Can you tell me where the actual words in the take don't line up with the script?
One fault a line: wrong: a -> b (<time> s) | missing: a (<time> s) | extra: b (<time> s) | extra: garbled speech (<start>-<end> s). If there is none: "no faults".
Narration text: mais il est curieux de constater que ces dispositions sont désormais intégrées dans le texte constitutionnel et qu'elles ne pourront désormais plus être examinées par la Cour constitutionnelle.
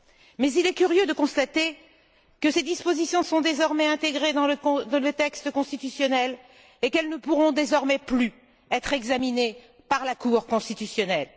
no faults